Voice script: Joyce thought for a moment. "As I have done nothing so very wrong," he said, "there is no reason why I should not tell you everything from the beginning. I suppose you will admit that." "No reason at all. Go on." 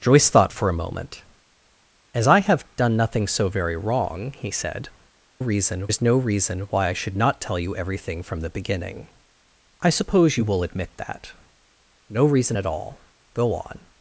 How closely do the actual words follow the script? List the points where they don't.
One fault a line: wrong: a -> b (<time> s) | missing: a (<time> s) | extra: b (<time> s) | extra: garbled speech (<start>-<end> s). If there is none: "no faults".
wrong: there -> reason (5.4 s)